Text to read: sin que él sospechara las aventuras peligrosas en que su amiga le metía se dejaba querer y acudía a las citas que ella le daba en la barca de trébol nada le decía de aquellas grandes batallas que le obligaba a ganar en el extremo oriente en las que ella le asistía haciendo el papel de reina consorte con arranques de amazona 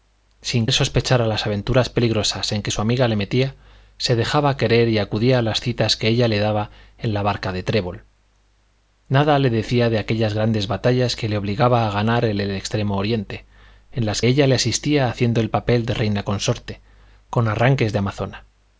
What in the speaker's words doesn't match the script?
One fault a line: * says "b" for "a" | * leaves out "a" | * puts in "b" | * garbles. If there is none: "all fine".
* leaves out "que"
* leaves out "que"